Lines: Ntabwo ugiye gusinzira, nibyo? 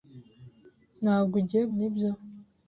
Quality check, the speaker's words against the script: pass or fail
fail